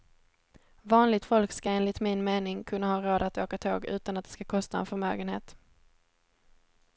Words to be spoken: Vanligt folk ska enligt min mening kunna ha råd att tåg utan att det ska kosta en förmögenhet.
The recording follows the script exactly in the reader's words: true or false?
false